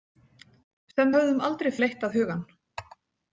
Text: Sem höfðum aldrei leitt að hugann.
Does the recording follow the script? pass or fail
pass